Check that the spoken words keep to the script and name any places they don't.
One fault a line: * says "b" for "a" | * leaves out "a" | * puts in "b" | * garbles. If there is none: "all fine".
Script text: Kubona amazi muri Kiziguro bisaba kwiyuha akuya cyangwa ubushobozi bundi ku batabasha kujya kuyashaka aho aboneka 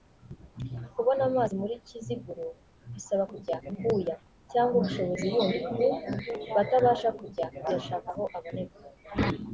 * says "kujya" for "kwiyuha"